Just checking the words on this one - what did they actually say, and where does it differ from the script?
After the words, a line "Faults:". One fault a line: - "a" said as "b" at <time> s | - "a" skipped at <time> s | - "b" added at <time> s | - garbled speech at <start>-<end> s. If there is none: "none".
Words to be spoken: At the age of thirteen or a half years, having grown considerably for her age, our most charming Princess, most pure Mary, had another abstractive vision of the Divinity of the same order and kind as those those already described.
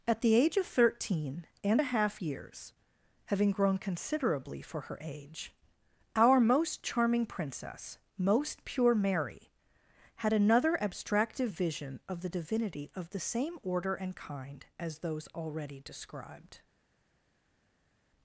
At the age of thirteen and a half years, having grown considerably for her age, our most charming Princess, most pure Mary, had another abstractive vision of the Divinity of the same order and kind as those already described.
Faults:
- "or" said as "and" at 1.6 s
- "those" skipped at 15.3 s